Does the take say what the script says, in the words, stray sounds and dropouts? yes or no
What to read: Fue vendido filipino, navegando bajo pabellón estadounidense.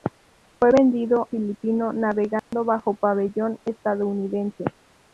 no